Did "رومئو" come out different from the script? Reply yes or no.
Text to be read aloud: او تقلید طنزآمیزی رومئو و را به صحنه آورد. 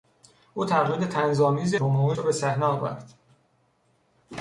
no